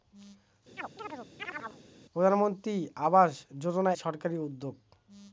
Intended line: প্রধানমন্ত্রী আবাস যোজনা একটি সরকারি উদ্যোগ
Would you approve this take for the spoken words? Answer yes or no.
no